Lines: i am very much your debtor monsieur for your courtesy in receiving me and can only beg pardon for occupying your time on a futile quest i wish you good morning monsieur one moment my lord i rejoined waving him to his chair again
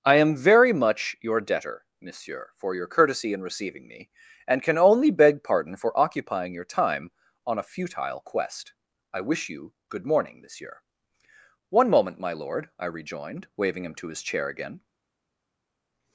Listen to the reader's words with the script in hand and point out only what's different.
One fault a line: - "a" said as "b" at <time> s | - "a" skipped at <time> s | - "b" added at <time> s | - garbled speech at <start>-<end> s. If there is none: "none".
none